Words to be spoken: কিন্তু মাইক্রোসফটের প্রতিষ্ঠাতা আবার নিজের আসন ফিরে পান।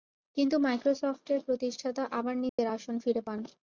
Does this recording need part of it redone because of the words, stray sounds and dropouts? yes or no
yes